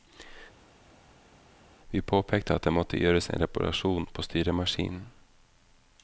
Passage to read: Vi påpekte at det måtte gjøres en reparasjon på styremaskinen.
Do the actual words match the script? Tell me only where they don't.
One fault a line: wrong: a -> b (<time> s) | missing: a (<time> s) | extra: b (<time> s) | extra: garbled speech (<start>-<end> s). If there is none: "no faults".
no faults